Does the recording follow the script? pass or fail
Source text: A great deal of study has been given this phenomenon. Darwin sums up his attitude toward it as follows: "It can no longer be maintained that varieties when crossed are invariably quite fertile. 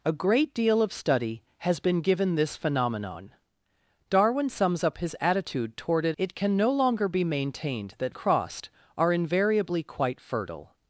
fail